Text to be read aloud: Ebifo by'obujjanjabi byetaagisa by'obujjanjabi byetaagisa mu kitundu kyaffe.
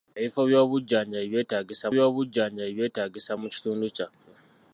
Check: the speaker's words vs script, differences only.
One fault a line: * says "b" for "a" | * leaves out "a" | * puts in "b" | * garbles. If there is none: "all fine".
all fine